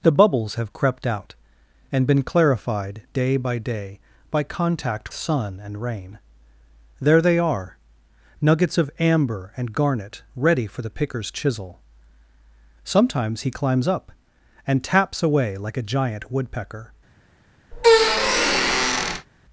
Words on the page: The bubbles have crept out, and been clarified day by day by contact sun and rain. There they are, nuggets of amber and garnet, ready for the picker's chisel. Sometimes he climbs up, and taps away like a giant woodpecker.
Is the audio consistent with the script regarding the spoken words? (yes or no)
yes